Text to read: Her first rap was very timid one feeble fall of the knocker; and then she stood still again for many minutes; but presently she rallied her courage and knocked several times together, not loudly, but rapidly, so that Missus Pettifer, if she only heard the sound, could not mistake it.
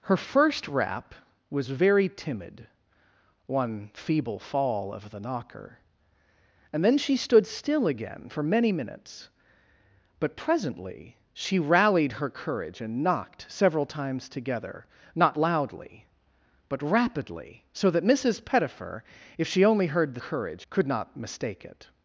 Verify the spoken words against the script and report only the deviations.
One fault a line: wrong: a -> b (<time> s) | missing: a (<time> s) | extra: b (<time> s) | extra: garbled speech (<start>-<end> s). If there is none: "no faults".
wrong: sound -> courage (20.2 s)